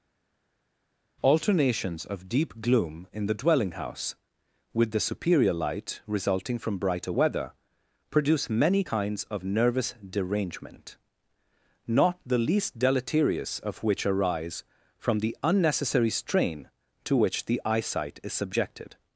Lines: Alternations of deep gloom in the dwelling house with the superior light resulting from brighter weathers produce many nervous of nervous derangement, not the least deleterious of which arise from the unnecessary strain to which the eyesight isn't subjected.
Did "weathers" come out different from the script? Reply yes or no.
yes